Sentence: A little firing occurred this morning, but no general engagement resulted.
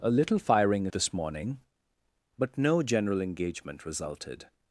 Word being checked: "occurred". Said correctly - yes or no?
no